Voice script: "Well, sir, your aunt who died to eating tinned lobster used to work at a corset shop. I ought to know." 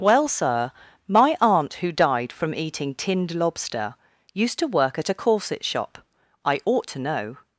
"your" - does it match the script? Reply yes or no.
no